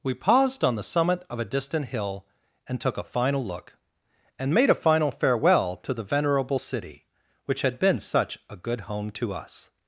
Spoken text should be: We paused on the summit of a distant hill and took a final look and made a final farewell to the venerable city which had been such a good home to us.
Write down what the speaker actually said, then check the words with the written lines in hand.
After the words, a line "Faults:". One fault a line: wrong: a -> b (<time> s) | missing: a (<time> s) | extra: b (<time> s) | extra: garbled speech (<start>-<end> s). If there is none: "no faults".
We paused on the summit of a distant hill and took a final look and made a final farewell to the venerable city which had been such a good home to us.
Faults:
no faults